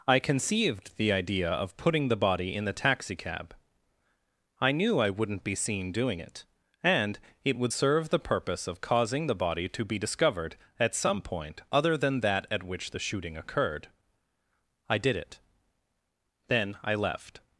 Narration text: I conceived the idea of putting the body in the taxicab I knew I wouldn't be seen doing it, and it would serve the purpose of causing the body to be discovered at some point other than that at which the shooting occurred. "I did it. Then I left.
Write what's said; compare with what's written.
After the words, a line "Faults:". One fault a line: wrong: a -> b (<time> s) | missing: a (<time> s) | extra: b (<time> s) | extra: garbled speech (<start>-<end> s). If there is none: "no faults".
I conceived the idea of putting the body in the taxicab I knew I wouldn't be seen doing it, and it would serve the purpose of causing the body to be discovered at some point other than that at which the shooting occurred. "I did it. Then I left.
Faults:
no faults